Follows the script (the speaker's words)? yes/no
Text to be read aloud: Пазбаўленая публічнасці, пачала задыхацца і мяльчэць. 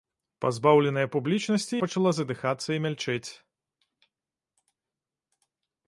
yes